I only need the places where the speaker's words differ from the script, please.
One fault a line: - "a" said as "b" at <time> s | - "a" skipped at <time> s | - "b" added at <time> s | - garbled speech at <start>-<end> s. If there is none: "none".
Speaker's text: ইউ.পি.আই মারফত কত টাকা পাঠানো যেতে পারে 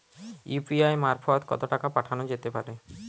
none